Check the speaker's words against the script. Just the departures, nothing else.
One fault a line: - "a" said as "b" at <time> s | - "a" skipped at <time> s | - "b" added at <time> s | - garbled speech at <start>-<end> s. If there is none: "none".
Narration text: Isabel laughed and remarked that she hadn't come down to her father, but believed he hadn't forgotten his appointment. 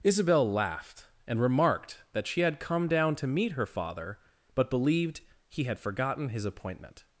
- "hadn't" said as "had" at 2.4 s
- "meet" added at 3.3 s
- "hadn't" said as "had" at 5.7 s